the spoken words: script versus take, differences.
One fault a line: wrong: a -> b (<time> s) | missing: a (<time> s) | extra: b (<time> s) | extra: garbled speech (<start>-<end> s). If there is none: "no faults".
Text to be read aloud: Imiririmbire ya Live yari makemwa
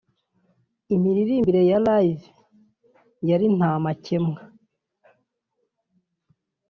extra: nta (3.6 s)